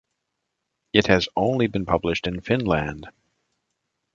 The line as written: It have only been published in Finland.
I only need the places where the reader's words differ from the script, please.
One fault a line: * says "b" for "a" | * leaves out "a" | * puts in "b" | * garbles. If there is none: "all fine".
* says "has" for "have"